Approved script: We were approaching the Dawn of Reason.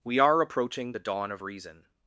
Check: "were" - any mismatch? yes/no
yes